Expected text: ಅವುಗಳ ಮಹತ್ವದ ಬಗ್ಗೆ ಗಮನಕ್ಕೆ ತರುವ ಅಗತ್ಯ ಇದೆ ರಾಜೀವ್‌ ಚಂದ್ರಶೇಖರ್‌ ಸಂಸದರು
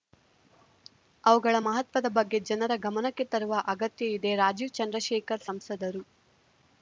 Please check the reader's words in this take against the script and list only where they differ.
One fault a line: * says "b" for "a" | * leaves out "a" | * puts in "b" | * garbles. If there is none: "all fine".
* puts in "ಜನರ"